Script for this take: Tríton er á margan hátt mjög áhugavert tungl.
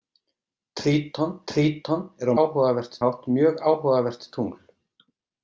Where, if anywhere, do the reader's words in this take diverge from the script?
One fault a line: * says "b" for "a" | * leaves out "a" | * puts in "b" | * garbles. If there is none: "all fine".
* puts in "tríton"
* says "áhugavert" for "margan"